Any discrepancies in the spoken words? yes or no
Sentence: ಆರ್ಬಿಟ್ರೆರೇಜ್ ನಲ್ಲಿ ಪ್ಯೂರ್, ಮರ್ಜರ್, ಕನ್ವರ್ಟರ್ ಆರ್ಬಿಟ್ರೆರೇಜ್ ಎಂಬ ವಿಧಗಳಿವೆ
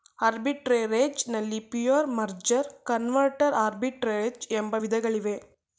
no